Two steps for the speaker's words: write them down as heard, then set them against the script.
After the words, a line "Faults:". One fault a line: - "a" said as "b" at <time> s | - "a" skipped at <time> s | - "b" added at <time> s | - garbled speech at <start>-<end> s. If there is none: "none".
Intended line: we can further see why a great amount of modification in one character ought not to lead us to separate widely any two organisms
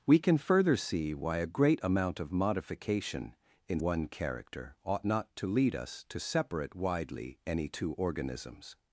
we can further see why a great amount of modification in one character ought not to lead us to separate widely any two organisms
Faults:
none